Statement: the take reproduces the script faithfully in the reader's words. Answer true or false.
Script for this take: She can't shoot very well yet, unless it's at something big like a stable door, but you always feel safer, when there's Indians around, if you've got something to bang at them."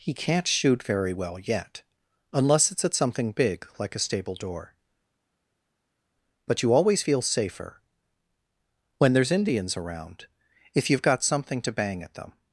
false